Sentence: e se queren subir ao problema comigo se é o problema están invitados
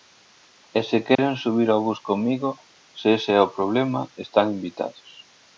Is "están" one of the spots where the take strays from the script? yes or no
no